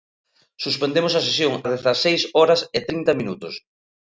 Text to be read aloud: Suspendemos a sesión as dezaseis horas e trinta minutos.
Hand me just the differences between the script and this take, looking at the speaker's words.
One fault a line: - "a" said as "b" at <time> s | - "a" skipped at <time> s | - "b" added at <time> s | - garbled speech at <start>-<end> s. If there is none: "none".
none